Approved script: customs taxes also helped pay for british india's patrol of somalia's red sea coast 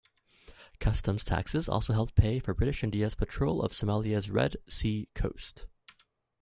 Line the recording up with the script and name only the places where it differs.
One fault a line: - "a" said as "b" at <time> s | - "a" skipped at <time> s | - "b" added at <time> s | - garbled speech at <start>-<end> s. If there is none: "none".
none